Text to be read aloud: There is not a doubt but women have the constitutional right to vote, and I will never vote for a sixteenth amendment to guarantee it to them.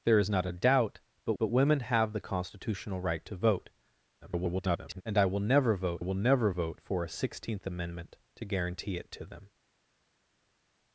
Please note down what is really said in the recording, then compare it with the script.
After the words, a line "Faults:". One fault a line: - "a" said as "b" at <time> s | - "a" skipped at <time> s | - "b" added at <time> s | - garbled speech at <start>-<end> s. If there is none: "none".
There is not a doubt but but women have the constitutional right to vote, [garbled] and I will never vote will never vote for a sixteenth amendment to guarantee it to them.
Faults:
- "but" added at 1.4 s
- garbled speech at 4.2-5.0 s
- "will never vote" added at 6.0 s